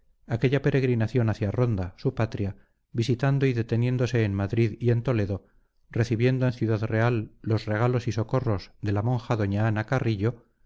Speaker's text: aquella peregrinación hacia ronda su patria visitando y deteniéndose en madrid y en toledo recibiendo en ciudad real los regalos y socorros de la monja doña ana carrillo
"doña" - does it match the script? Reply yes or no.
yes